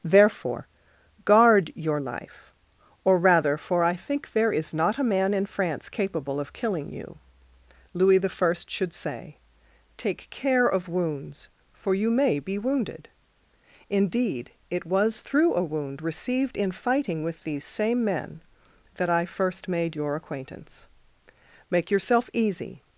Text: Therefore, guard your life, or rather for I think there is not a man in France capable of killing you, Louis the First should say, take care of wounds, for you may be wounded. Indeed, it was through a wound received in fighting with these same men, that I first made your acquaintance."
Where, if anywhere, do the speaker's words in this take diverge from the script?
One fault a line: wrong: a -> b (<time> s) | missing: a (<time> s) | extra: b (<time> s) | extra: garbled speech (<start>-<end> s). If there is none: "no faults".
extra: Make yourself easy (21.7 s)